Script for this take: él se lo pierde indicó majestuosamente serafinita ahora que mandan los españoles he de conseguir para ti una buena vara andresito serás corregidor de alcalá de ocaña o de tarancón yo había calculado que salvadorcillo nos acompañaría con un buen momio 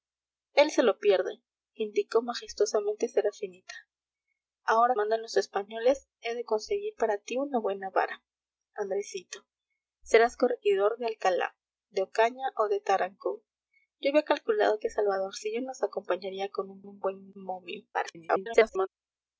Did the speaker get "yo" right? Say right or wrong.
right